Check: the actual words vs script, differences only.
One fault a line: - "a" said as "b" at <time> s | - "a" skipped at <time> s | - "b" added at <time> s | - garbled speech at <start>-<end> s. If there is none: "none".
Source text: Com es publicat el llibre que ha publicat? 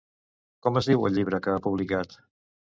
- "publicat" said as "diu" at 0.9 s